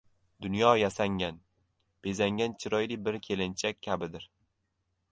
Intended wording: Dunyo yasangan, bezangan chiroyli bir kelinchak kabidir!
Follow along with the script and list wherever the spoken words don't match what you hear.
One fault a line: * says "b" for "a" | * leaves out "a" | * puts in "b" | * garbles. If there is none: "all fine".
all fine